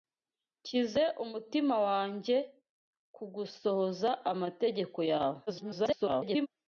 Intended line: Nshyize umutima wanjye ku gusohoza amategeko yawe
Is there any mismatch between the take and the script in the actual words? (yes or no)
yes